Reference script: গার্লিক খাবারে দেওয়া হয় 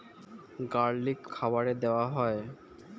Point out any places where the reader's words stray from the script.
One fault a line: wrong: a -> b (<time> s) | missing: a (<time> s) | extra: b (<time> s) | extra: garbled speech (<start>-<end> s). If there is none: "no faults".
no faults